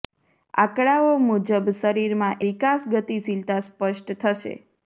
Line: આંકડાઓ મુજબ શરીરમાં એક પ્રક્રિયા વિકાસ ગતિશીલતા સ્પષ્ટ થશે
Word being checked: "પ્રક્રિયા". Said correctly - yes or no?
no